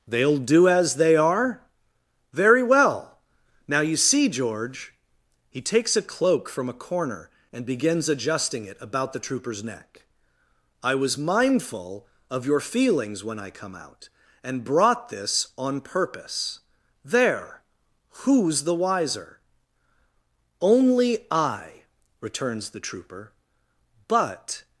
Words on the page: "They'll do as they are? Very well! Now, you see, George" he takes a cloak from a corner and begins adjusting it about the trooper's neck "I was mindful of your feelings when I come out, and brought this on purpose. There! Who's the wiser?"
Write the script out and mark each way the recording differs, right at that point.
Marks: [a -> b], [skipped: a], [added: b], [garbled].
"They'll do as they are? Very well! Now, you see, George" he takes a cloak from a corner and begins adjusting it about the trooper's neck "I was mindful of your feelings when I come out, and brought this on purpose. There! Who's the wiser?" [added: Only I returns the trooper but]